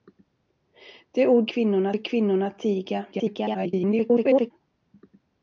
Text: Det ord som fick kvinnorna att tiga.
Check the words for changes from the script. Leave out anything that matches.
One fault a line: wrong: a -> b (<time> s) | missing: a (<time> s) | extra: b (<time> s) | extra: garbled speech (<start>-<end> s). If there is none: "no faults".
wrong: som -> kvinnorna (1.5 s)
extra: garbled speech (3.1-4.5 s)